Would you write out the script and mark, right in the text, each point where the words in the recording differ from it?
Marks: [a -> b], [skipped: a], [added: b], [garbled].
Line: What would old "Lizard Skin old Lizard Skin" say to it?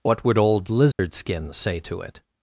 What would old "Lizard Skin [skipped: old Lizard Skin"] say to it?